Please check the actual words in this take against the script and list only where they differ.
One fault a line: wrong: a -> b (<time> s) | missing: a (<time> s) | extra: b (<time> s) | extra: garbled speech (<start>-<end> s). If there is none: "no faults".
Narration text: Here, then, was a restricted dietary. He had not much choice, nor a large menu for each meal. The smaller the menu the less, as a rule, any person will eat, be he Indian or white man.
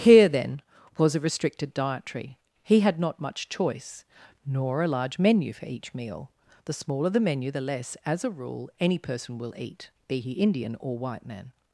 no faults